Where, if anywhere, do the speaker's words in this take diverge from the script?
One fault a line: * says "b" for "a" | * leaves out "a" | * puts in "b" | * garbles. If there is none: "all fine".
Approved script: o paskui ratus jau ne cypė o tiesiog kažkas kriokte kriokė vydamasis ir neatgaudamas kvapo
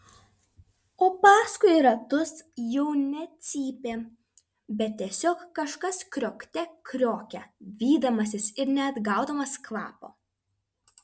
* says "bet" for "o"